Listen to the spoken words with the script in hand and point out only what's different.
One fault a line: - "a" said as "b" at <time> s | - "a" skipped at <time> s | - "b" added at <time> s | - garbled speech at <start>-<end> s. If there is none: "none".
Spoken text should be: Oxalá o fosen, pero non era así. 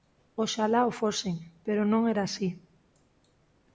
none